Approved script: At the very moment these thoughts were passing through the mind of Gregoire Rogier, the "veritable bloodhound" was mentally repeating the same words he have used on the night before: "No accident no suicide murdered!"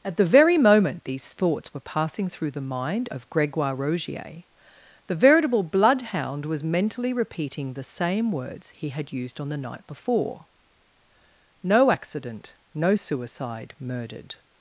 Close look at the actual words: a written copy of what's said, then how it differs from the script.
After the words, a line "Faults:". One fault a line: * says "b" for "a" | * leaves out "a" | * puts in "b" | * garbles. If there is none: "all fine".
At the very moment these thoughts were passing through the mind of Gregoire Rogier, the "veritable bloodhound" was mentally repeating the same words he had used on the night before: "No accident no suicide murdered!"
Faults:
* says "had" for "have"